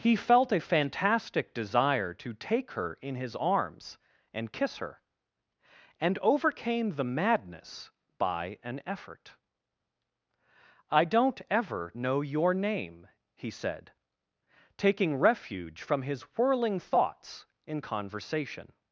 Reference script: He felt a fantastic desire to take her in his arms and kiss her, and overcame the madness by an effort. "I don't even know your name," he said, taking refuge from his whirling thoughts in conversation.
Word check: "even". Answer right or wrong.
wrong